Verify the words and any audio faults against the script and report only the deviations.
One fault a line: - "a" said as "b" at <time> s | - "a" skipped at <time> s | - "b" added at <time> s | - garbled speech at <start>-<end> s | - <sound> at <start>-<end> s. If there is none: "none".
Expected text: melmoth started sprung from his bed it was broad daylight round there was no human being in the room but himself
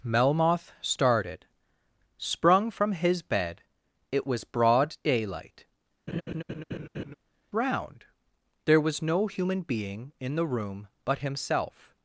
- laugh at 6.1-7.1 s